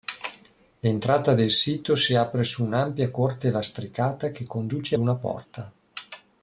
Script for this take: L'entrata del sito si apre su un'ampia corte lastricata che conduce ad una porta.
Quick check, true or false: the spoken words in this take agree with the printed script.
false